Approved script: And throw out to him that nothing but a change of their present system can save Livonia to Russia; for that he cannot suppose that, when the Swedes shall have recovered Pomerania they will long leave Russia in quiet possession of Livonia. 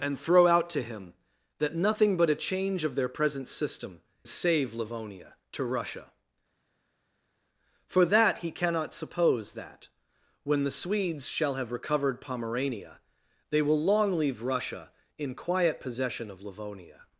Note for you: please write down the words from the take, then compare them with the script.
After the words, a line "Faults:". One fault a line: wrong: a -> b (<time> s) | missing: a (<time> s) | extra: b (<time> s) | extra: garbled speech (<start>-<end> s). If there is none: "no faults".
And throw out to him that nothing but a change of their present system save Livonia to Russia; for that he cannot suppose that, when the Swedes shall have recovered Pomerania they will long leave Russia in quiet possession of Livonia.
Faults:
missing: can (4.0 s)